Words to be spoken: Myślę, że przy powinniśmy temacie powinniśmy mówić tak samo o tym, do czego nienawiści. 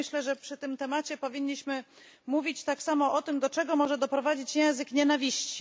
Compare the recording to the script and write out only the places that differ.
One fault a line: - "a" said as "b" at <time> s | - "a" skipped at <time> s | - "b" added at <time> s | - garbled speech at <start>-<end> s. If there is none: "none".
- "powinniśmy" said as "tym" at 0.6 s
- "może doprowadzić język" added at 3.8 s